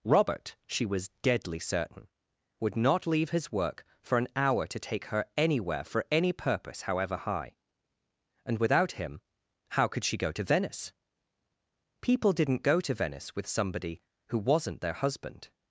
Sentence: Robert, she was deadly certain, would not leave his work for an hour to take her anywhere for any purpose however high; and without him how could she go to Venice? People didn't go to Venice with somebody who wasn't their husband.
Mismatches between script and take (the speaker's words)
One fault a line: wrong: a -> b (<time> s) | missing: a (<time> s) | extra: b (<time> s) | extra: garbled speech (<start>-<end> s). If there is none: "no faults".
no faults